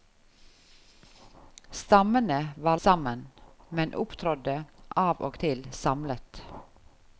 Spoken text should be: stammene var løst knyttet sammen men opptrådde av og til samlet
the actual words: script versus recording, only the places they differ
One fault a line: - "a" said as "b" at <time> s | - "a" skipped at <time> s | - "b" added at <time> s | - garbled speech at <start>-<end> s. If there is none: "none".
- "løst knyttet" skipped at 2.8 s